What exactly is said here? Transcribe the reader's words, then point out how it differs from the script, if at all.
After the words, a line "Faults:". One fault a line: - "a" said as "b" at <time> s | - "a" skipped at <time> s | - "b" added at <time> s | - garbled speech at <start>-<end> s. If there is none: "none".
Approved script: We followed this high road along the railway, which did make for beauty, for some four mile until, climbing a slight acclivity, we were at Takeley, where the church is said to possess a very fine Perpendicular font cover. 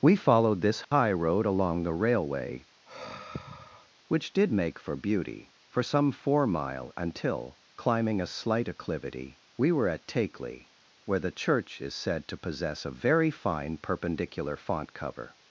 We followed this high road along the railway, which did make for beauty, for some four mile until, climbing a slight acclivity, we were at Takeley, where the church is said to possess a very fine Perpendicular font cover.
Faults:
none